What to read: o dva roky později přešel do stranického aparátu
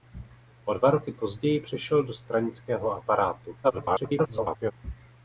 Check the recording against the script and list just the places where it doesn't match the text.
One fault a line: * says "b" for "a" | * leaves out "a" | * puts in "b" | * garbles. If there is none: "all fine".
* garbles